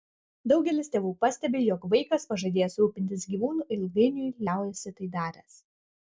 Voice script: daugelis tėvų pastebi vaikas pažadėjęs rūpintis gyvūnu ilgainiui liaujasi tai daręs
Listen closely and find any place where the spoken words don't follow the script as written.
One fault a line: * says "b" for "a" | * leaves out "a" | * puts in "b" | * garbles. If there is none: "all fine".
* puts in "jog"